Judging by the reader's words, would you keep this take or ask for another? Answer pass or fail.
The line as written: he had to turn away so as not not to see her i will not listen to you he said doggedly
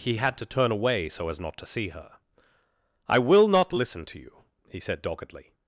fail